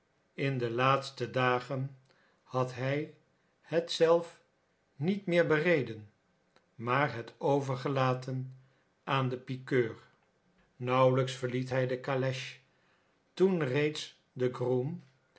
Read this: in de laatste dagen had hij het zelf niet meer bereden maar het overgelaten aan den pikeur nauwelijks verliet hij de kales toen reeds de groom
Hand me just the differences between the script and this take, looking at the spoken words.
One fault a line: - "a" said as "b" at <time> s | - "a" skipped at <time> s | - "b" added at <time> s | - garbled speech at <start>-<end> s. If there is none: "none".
none